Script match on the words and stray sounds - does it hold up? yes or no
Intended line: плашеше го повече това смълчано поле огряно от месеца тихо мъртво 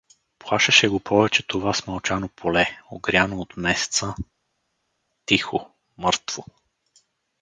yes